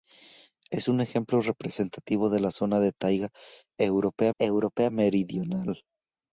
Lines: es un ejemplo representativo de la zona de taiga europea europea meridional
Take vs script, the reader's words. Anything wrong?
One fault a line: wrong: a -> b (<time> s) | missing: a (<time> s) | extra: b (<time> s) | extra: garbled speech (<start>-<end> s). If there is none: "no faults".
no faults